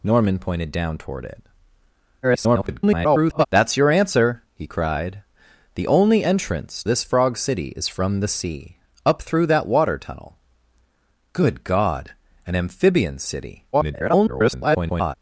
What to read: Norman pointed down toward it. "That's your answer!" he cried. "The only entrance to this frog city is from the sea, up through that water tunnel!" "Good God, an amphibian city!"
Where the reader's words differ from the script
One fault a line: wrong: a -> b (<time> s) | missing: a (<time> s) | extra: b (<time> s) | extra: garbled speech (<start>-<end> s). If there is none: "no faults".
extra: garbled speech (2.2-3.5 s)
missing: to (6.8 s)
extra: garbled speech (13.7-15.1 s)